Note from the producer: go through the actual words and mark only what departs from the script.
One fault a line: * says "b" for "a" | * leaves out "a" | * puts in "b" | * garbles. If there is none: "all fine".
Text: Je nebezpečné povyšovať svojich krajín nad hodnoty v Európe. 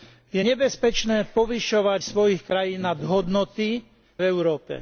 all fine